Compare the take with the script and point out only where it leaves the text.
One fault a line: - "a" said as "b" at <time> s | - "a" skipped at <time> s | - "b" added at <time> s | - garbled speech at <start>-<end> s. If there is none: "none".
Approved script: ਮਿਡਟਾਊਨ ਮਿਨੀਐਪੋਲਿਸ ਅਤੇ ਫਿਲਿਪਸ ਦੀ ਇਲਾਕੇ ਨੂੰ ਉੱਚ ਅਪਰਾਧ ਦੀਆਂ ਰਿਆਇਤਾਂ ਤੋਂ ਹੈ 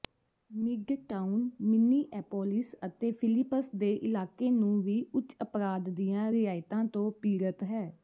- "ਦੀ" said as "ਦੇ" at 3.8 s
- "ਵੀ" added at 4.8 s
- "ਪੀੜਤ" added at 7.2 s